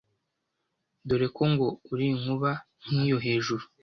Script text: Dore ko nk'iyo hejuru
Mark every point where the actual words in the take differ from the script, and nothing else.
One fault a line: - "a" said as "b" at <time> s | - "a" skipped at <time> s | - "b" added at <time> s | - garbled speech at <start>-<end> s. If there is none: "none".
- "ngo uri inkuba" added at 1.5 s